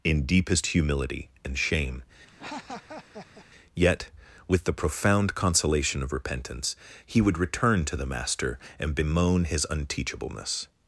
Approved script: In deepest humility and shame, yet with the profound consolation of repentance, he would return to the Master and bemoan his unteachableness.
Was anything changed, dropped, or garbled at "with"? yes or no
no